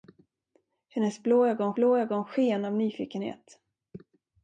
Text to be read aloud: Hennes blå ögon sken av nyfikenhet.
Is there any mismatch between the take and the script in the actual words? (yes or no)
yes